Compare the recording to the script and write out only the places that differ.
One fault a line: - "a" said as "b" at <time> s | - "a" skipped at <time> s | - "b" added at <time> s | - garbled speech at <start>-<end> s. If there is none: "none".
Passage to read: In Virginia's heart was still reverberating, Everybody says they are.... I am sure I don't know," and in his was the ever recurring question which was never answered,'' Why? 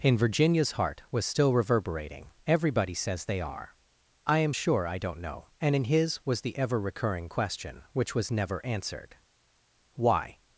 none